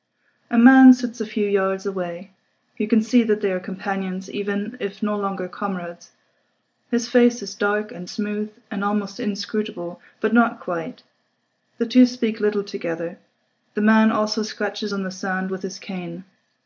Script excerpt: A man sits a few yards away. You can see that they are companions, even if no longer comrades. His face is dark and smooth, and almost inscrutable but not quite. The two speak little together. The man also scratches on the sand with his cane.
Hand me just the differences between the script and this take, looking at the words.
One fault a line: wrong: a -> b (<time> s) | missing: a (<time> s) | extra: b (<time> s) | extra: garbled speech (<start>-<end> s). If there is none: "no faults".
no faults